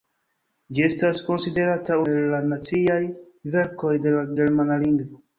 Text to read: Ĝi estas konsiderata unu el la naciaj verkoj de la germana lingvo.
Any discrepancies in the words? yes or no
yes